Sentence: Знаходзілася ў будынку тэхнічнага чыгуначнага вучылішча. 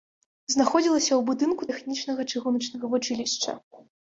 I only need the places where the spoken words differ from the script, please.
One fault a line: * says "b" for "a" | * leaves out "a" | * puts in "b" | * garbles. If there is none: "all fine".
all fine